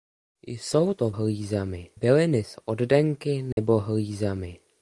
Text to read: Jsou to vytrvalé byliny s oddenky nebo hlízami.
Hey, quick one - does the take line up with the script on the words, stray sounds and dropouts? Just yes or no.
no